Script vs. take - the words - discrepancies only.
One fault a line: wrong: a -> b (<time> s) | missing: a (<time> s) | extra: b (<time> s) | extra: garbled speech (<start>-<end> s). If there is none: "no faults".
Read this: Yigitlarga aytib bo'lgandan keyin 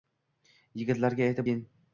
missing: bo'lgandan (1.5 s)